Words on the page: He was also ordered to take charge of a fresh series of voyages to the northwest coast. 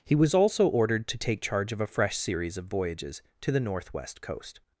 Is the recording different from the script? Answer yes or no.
no